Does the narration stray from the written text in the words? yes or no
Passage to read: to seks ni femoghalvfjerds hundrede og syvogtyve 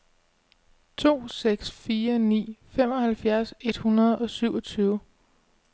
yes